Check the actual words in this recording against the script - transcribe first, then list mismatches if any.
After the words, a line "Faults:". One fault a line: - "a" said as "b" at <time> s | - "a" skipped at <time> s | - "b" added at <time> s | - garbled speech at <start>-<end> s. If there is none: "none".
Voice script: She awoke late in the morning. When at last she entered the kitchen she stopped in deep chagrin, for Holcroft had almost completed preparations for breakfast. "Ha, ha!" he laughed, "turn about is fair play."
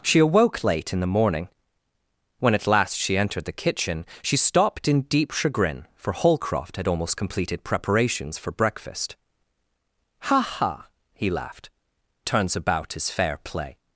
She awoke late in the morning. When at last she entered the kitchen she stopped in deep chagrin, for Holcroft had almost completed preparations for breakfast. "Ha, ha!" he laughed, "turns about is fair play."
Faults:
- "turn" said as "turns" at 12.2 s